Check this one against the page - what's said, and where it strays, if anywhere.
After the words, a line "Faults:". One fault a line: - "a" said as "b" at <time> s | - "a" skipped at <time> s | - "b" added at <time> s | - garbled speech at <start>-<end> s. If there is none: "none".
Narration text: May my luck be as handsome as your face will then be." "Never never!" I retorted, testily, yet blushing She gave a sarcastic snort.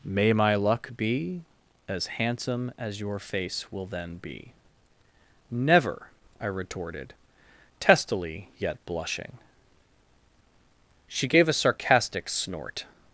May my luck be as handsome as your face will then be." "Never!" I retorted, testily, yet blushing She gave a sarcastic snort.
Faults:
- "never" skipped at 6.1 s